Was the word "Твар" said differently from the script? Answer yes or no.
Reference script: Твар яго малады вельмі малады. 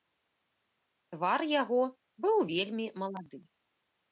no